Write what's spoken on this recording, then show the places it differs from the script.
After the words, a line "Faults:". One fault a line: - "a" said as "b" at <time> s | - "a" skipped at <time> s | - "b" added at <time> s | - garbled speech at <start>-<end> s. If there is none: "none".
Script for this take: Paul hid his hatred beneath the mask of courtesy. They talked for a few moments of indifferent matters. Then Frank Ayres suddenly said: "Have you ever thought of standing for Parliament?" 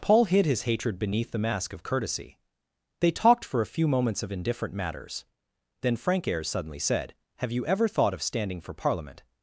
Paul hid his hatred beneath the mask of courtesy. They talked for a few moments of indifferent matters. Then Frank Ayres suddenly said: "Have you ever thought of standing for Parliament?"
Faults:
none